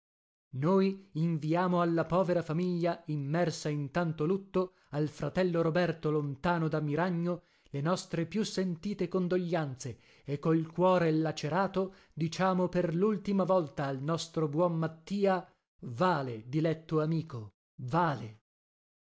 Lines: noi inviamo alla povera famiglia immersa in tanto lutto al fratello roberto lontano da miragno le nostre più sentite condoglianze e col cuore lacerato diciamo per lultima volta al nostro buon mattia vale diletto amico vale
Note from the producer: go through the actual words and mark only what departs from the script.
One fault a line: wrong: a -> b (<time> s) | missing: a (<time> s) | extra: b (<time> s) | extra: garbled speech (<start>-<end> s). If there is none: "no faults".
no faults